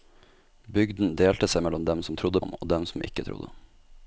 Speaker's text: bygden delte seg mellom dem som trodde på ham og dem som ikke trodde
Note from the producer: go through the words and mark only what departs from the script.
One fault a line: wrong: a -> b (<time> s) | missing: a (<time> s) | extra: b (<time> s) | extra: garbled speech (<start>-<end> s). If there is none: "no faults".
missing: på (2.4 s)